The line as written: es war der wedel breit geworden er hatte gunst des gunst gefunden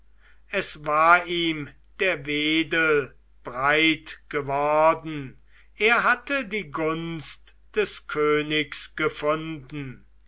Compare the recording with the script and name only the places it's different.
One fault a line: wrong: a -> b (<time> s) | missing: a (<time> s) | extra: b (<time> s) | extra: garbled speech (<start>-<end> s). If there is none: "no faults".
extra: ihm (1.3 s)
extra: die (6.5 s)
wrong: gunst -> königs (8.1 s)